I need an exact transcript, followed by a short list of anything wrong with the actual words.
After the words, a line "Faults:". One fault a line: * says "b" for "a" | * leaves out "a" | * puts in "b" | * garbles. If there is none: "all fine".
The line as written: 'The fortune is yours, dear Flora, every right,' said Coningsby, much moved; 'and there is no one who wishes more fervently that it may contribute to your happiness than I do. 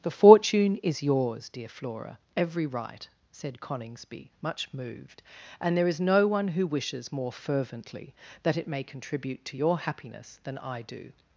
'The fortune is yours, dear Flora, every right,' said Coningsby, much moved; 'and there is no one who wishes more fervently that it may contribute to your happiness than I do.
Faults:
all fine